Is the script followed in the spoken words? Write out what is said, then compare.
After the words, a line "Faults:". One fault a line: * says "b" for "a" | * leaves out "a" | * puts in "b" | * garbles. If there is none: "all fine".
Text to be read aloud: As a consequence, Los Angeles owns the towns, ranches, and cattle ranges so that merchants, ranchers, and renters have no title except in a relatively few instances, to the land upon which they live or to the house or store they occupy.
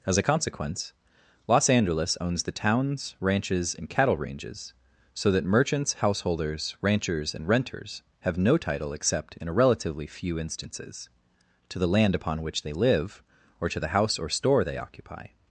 As a consequence, Los Angeles owns the towns, ranches, and cattle ranges so that merchants, householders, ranchers, and renters have no title except in a relatively few instances, to the land upon which they live or to the house or store they occupy.
Faults:
* puts in "householders"